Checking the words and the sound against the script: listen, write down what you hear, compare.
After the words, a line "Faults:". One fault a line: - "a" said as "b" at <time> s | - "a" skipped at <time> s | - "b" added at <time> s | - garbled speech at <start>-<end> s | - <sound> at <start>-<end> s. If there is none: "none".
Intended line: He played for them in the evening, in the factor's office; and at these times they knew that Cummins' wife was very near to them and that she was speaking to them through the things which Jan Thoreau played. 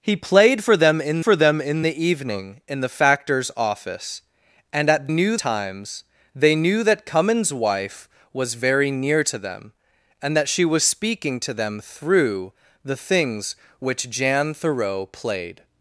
He played for them in for them in the evening, in the factor's office; and at knew times they knew that Cummins' wife was very near to them and that she was speaking to them through the things which Jan Thoreau played.
Faults:
- "for them in" added at 1.2 s
- "these" said as "knew" at 5.1 s